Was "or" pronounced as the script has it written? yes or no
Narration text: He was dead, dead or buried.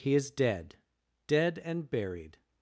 no